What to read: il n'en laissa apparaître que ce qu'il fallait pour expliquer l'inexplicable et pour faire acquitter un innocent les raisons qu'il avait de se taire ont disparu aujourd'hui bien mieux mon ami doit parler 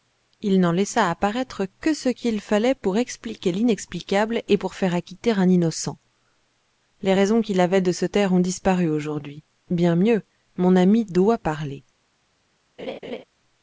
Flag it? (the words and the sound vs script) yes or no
yes